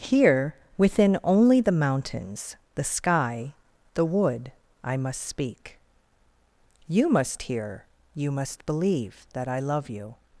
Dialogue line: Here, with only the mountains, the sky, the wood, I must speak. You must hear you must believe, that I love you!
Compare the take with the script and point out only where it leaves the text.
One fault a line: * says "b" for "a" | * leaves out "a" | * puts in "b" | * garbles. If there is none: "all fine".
* says "within" for "with"